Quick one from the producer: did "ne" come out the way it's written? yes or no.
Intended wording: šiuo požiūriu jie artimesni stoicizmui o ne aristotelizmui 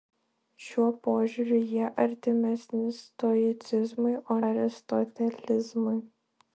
no